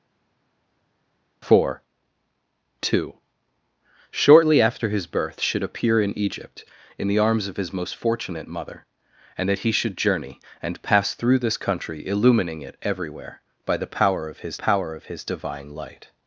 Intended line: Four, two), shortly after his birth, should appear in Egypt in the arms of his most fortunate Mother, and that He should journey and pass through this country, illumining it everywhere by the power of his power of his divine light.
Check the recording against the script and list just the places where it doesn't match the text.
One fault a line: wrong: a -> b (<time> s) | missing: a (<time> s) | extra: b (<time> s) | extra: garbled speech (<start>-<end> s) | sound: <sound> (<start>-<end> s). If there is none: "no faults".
no faults